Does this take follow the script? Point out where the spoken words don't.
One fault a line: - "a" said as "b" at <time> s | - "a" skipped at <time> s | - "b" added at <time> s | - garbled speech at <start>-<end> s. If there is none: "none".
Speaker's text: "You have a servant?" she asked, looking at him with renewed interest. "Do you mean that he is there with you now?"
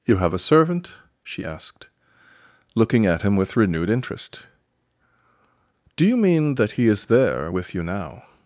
none